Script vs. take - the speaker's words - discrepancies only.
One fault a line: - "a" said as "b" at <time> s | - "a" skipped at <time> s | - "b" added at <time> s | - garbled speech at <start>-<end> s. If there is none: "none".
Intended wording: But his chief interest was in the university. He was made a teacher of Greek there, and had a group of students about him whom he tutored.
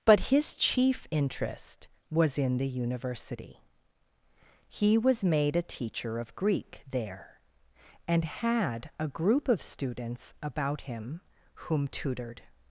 - "he" skipped at 11.9 s